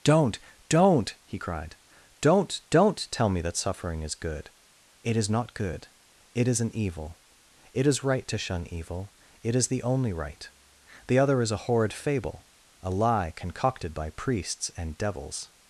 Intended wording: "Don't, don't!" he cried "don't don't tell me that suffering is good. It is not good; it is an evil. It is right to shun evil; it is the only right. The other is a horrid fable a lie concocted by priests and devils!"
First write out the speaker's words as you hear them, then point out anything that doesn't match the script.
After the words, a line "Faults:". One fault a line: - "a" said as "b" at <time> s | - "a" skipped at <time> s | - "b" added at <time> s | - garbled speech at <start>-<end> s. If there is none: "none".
"Don't, don't!" he cried "don't don't tell me that suffering is good. It is not good; it is an evil. It is right to shun evil; it is the only right. The other is a horrid fable a lie concocted by priests and devils!"
Faults:
none